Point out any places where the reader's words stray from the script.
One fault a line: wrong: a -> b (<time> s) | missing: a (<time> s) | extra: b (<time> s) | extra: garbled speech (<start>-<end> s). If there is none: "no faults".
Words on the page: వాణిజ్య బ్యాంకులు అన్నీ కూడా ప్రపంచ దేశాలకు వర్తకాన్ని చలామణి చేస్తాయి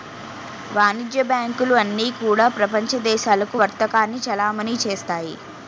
no faults